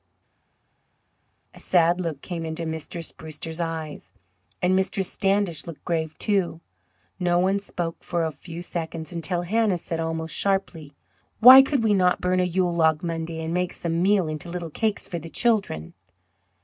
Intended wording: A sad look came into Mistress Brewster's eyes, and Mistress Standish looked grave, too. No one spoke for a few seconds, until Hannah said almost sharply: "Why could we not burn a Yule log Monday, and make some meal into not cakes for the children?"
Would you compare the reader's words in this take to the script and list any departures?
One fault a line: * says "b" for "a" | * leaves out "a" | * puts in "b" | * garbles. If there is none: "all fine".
* says "little" for "not"